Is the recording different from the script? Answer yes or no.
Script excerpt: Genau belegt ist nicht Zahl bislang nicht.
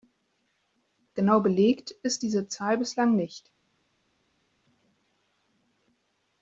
yes